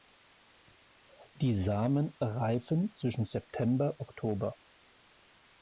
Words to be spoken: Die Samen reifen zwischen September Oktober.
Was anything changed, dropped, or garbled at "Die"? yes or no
no